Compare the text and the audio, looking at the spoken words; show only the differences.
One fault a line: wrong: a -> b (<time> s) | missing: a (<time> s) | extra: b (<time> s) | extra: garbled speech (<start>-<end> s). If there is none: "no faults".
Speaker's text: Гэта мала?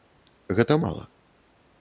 no faults